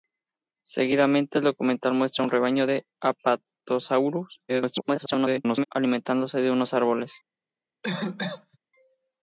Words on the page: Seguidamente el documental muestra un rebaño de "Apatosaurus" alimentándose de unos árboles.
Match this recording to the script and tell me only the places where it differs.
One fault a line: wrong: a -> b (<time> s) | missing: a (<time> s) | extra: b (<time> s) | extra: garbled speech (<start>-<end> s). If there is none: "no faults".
extra: garbled speech (4.5-5.6 s)